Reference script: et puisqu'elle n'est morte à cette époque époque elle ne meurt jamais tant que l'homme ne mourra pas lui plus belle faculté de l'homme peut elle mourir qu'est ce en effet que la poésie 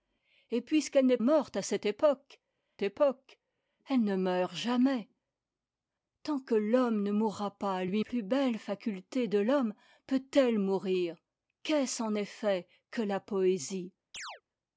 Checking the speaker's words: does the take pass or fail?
pass